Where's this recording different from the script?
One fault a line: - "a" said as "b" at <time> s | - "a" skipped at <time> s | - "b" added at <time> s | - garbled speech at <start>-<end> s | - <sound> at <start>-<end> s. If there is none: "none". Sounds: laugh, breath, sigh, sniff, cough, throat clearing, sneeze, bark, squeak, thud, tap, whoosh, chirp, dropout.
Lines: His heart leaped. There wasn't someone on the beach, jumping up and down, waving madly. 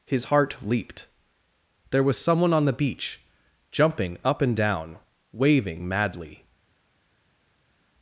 - "wasn't" said as "was" at 2.0 s